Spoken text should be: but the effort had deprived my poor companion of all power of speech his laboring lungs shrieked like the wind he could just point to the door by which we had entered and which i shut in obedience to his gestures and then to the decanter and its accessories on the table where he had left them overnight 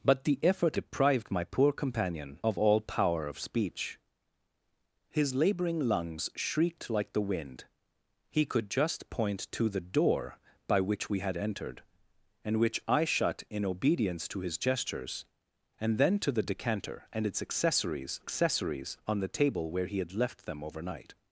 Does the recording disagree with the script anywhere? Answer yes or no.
yes